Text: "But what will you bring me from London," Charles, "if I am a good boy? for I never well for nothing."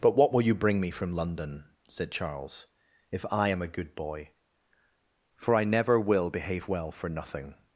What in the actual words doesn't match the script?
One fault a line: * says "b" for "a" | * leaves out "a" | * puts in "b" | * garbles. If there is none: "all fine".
* puts in "said"
* puts in "will behave"